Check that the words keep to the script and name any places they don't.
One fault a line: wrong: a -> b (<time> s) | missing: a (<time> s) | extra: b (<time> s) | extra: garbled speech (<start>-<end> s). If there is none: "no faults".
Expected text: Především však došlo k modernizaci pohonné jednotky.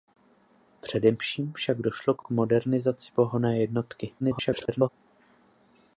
extra: k (2.2 s)
extra: garbled speech (4.2-4.9 s)